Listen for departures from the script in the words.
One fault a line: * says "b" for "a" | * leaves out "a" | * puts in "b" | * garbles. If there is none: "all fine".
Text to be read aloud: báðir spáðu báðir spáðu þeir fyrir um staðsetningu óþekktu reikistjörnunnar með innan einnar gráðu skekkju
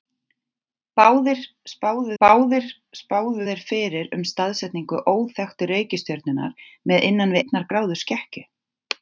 all fine